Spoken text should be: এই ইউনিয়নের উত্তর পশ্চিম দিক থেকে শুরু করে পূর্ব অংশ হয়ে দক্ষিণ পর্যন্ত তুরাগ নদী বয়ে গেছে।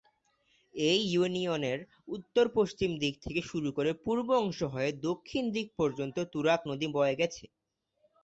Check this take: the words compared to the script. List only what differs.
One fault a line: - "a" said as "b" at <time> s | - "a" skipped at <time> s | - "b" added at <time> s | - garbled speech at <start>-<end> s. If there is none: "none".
- "দিক" added at 5.6 s